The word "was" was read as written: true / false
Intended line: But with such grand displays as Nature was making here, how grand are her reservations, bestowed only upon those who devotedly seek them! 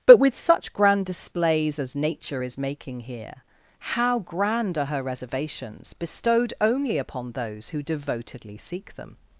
false